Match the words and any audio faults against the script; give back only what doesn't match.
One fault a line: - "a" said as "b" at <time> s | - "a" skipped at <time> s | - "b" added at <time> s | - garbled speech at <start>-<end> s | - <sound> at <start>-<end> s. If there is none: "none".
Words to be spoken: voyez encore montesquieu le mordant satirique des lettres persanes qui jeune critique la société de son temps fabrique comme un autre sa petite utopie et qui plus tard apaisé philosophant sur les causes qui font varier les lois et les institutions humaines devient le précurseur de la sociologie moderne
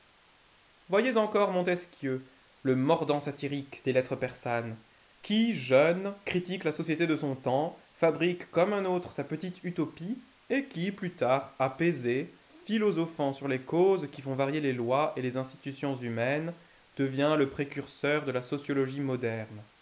none